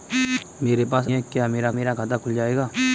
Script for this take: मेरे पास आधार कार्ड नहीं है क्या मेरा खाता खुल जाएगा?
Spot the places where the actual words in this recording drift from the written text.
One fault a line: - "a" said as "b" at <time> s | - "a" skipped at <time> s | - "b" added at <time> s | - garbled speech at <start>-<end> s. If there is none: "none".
- "आधार कार्ड नहीं" skipped at 1.1 s
- "मेरा" added at 1.7 s